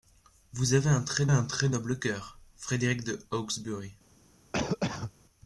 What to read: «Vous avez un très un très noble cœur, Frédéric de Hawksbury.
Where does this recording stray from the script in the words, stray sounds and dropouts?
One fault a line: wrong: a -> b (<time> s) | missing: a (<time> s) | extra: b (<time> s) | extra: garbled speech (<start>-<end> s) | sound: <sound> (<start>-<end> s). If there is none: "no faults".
sound: cough (4.5-5.1 s)